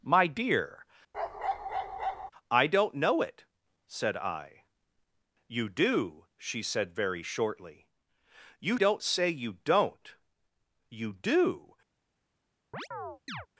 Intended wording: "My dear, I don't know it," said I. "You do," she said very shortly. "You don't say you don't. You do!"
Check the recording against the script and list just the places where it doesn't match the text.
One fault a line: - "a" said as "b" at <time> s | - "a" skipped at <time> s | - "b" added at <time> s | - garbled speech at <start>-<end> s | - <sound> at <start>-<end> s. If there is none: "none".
- bark at 1.1-2.3 s
- chirp at 12.7-13.5 s